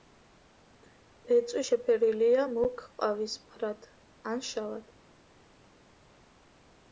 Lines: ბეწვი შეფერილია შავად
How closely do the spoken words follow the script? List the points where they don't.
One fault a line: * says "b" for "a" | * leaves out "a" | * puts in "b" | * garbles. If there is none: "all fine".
* puts in "მუქ ყავისფრად ან"